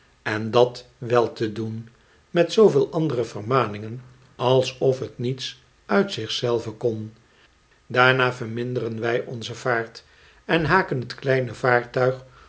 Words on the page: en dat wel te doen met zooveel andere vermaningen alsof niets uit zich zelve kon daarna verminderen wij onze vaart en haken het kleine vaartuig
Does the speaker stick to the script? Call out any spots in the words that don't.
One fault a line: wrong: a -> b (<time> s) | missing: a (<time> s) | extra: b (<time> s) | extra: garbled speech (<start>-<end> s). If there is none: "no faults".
extra: het (5.0 s)